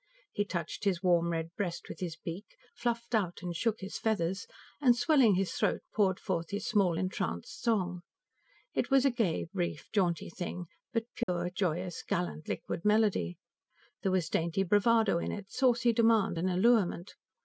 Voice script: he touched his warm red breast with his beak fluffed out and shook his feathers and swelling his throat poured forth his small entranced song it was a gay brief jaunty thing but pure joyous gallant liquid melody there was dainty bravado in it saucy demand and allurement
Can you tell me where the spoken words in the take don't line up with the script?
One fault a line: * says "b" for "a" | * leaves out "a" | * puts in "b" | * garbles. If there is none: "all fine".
all fine